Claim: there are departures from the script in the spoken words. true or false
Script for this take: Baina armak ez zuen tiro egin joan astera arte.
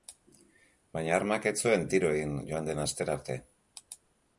true